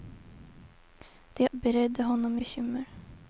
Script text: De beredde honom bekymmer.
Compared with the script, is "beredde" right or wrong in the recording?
right